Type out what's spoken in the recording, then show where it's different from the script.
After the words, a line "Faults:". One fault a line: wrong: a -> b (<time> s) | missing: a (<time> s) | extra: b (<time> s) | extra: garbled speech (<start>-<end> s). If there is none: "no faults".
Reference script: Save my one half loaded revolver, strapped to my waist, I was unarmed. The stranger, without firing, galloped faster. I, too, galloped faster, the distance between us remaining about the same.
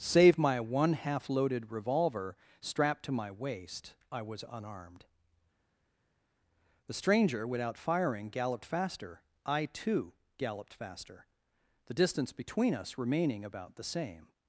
Save my one half loaded revolver, strapped to my waist, I was unarmed. The stranger, without firing, galloped faster. I, too, galloped faster, the distance between us remaining about the same.
Faults:
no faults